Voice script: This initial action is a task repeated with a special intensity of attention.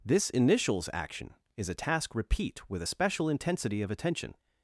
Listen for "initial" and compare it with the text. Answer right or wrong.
wrong